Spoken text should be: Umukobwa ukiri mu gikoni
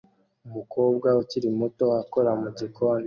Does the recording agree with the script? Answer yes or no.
no